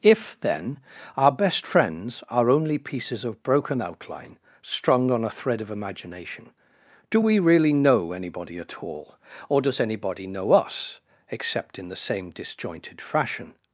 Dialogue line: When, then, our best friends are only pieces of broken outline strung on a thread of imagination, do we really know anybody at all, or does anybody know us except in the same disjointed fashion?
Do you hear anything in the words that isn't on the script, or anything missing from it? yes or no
yes